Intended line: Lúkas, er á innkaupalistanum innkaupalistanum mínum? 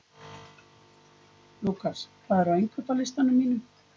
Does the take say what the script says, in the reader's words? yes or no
no